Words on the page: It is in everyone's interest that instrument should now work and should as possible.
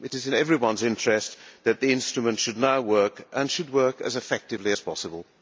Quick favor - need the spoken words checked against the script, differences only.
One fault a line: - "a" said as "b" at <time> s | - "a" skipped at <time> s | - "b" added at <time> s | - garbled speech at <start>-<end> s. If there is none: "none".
- "the" added at 1.8 s
- "work as effectively" added at 3.7 s